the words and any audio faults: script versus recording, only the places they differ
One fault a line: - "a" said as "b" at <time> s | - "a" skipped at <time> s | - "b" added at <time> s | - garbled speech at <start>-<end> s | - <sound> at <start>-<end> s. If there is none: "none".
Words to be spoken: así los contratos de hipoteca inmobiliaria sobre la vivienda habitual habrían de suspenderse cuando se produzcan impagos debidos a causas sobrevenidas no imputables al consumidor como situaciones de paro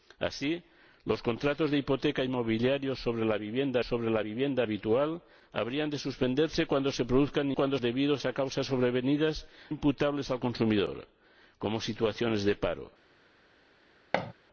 - "sobre la vivienda" added at 3.8 s
- "impagos" said as "cuando" at 7.5 s
- "no" skipped at 9.5 s
- thud at 14.1-14.3 s